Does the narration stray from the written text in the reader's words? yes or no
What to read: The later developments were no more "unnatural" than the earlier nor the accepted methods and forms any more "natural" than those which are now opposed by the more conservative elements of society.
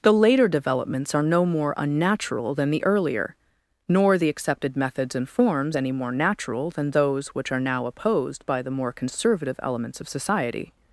yes